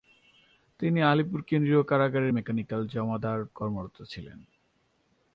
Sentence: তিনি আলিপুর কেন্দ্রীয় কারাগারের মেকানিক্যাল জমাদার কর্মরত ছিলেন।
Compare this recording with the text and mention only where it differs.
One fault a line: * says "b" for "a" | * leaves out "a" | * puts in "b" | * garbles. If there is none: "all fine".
all fine